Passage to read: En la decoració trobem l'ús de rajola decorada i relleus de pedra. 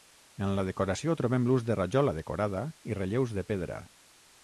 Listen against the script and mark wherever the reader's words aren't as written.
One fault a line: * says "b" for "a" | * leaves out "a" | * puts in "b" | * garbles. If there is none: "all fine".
all fine